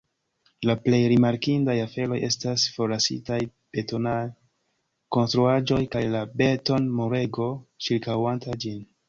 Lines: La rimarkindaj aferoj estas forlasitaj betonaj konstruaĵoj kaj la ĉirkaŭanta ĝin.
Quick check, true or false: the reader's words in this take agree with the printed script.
false